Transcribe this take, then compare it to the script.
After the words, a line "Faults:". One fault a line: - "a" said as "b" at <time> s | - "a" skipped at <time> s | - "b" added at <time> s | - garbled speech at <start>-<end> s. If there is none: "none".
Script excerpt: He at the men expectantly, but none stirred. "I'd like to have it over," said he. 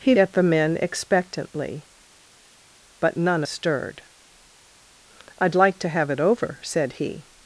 He at the men expectantly, but none stirred. "I'd like to have it over," said he.
Faults:
none